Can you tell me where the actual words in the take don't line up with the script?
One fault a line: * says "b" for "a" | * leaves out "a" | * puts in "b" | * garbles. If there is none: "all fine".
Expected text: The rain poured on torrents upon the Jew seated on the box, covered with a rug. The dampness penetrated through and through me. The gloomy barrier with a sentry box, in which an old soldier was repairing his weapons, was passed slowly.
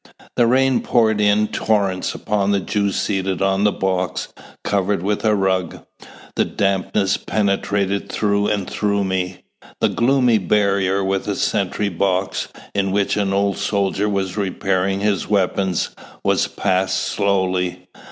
* says "in" for "on"